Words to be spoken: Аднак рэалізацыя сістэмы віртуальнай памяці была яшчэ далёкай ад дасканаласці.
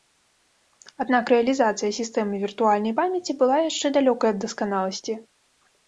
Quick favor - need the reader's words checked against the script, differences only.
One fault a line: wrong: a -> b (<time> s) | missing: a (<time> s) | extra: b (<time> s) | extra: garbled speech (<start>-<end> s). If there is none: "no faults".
no faults